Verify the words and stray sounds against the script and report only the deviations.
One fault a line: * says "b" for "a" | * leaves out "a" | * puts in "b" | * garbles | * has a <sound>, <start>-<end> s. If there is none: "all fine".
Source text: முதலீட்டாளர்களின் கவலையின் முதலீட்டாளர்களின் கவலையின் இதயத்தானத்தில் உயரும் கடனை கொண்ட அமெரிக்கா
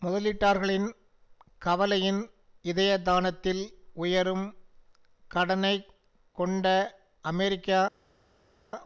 * leaves out "முதலீட்டாளர்களின் கவலையின்"